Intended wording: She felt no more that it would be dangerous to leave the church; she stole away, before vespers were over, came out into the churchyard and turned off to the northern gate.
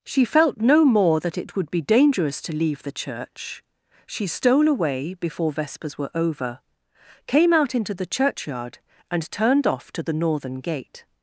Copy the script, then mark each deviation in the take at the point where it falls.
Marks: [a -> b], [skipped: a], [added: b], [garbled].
She felt no more that it would be dangerous to leave the church; she stole away, before vespers were over, came out into the churchyard and turned off to the northern gate.